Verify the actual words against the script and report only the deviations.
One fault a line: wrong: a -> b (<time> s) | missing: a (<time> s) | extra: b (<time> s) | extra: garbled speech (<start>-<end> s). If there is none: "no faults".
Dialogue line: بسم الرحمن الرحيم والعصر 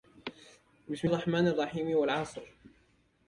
no faults